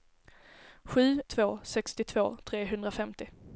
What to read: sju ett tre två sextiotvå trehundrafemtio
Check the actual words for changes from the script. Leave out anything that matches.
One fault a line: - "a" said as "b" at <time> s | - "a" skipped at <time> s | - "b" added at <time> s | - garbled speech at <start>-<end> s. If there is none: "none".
- "ett tre" skipped at 1.2 s